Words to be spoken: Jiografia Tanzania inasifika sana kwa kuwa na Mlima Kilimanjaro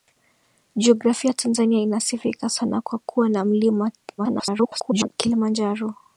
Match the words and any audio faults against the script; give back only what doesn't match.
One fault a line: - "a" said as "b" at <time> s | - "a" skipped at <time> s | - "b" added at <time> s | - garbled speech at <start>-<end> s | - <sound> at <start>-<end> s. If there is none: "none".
- garbled speech at 4.2-5.1 s